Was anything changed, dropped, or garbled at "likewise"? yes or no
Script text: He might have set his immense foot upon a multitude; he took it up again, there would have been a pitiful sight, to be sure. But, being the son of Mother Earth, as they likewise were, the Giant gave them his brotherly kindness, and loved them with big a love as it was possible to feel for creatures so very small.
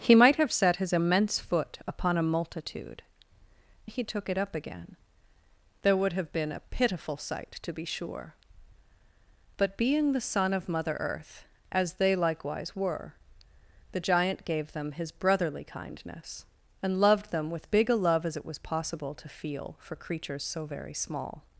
no